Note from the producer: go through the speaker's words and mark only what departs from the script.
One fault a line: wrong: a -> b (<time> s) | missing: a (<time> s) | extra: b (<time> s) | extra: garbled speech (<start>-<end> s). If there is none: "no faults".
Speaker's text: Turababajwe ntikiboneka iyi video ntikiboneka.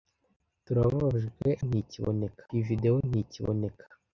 no faults